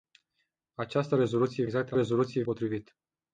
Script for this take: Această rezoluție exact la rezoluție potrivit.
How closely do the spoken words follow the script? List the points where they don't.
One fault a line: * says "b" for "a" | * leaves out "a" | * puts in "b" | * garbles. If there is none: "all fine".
all fine